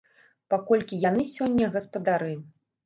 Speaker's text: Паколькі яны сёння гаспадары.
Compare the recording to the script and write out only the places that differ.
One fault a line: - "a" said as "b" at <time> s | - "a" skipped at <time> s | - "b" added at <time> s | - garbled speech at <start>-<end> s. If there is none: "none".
none